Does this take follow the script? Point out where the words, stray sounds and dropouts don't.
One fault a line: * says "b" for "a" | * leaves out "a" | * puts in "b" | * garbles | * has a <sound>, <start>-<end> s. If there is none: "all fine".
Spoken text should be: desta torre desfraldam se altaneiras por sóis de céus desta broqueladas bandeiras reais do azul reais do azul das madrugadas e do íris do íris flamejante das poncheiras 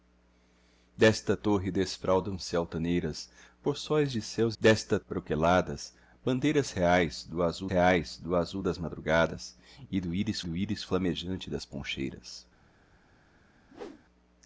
* has a whoosh, 13.7-14.0 s